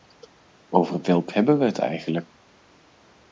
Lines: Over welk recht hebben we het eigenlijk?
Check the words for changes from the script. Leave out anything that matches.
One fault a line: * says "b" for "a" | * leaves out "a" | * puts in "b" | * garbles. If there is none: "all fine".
* leaves out "recht"